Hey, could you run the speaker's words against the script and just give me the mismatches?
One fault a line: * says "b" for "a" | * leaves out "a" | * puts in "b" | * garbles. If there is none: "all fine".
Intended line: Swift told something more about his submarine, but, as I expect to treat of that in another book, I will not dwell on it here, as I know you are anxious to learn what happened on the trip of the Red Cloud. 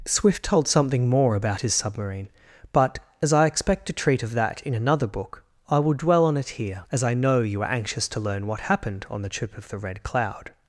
* leaves out "not"